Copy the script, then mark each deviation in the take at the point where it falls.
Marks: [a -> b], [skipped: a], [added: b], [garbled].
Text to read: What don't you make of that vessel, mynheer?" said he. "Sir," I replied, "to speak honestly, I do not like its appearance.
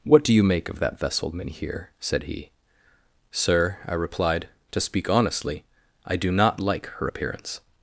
What [don't -> do] you make of that vessel, mynheer?" said he. "Sir," I replied, "to speak honestly, I do not like [its -> her] appearance.